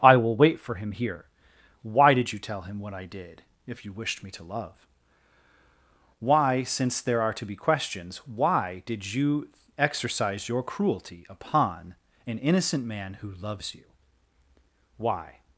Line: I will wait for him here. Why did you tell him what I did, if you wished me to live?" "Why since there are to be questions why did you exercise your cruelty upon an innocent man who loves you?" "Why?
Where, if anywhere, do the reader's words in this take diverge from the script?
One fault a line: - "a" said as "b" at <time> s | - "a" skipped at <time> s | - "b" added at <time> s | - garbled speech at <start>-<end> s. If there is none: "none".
- "live" said as "love" at 4.4 s